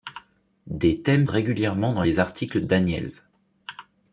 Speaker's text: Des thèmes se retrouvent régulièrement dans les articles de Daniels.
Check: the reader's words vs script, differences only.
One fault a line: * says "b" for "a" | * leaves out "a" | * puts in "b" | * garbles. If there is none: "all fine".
* leaves out "se retrouvent"
* leaves out "de"